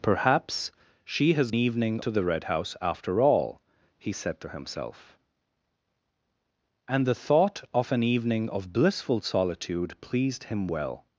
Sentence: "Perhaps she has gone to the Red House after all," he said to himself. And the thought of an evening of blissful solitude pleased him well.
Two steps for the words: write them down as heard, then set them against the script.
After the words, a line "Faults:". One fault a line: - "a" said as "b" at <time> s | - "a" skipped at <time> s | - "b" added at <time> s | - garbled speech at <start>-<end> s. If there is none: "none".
"Perhaps she has evening to the Red House after all," he said to himself. And the thought of an evening of blissful solitude pleased him well.
Faults:
- "gone" said as "evening" at 1.5 s